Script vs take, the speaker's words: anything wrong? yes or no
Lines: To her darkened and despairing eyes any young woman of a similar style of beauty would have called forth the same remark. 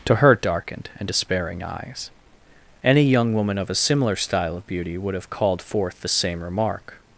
no